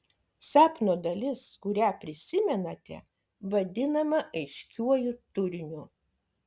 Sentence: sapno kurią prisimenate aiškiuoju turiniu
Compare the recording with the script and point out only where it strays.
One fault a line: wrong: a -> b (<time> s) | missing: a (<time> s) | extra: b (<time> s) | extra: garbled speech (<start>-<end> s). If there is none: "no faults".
extra: dalis (1.1 s)
extra: vadinama (3.5 s)